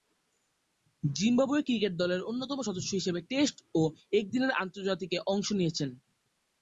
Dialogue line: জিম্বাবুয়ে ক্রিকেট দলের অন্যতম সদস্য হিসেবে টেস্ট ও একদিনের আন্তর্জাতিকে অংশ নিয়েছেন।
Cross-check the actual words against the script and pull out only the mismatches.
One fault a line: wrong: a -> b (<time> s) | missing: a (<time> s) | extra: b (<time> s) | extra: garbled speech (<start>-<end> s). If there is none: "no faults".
no faults